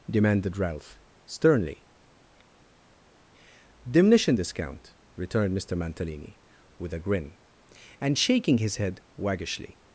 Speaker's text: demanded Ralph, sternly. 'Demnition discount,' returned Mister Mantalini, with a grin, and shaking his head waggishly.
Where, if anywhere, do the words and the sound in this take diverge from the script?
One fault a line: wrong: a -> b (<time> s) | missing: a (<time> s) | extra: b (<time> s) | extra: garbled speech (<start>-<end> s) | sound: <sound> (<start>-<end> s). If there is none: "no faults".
no faults